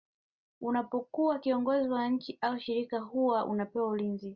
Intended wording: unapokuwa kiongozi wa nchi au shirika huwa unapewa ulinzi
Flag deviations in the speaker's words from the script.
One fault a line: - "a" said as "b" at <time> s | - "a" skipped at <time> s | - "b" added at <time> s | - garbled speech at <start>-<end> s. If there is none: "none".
none